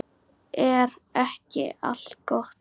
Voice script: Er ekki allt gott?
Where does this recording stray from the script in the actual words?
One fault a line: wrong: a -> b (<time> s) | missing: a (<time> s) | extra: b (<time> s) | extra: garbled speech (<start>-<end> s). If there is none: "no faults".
no faults